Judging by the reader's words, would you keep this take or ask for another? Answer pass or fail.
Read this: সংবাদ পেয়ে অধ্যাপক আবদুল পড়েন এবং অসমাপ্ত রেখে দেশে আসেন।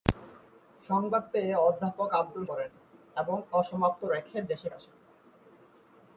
pass